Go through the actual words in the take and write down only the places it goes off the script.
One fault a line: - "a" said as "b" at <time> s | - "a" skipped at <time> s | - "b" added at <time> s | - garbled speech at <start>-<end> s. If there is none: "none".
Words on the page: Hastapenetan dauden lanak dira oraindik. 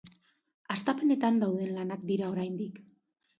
none